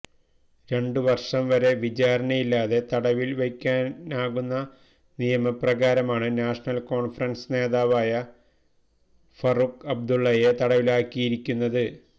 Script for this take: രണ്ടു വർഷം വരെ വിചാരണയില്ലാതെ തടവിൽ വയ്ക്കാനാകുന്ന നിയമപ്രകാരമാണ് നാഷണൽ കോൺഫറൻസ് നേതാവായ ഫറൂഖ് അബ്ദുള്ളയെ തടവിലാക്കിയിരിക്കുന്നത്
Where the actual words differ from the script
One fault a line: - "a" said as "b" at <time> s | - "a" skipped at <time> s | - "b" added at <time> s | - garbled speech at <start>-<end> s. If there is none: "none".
none